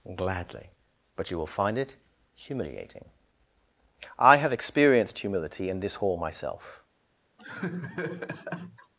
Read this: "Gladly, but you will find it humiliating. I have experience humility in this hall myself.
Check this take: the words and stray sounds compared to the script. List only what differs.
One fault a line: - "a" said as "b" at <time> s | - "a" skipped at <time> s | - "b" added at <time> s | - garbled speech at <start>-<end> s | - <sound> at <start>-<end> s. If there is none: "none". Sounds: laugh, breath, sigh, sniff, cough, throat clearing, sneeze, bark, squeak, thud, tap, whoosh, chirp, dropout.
- "experience" said as "experienced" at 4.5 s
- laugh at 7.4-8.9 s